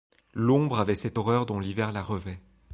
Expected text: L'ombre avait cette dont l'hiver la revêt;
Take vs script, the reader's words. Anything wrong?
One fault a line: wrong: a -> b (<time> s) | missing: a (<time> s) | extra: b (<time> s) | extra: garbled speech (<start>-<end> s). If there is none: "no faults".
extra: horreur (1.2 s)